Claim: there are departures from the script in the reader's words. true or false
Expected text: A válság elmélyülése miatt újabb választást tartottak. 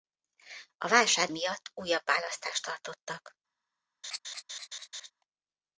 true